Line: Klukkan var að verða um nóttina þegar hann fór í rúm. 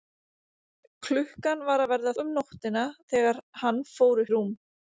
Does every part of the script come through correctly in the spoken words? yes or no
yes